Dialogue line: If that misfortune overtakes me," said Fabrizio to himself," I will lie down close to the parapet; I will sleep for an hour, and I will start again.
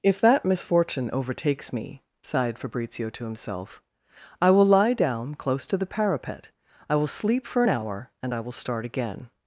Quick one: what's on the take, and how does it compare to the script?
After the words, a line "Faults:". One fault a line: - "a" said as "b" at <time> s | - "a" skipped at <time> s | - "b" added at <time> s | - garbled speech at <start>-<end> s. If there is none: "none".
If that misfortune overtakes me," sighed Fabrizio to himself," I will lie down close to the parapet; I will sleep for an hour, and I will start again.
Faults:
- "said" said as "sighed" at 2.2 s